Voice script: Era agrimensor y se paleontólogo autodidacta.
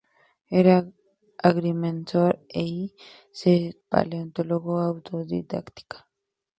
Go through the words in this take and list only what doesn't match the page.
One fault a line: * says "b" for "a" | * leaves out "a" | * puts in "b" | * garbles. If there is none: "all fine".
all fine